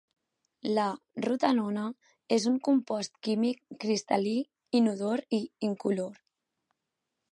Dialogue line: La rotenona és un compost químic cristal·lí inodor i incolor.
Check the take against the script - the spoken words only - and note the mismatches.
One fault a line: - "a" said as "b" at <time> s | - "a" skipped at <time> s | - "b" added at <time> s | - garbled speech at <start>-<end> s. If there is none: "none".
none